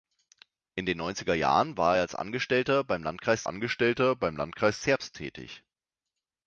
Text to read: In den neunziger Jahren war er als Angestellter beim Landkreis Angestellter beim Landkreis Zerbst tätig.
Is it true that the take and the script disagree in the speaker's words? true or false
false